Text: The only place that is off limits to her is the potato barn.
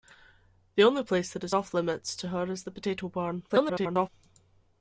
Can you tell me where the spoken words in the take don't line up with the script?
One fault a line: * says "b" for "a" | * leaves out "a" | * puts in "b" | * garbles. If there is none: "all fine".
* garbles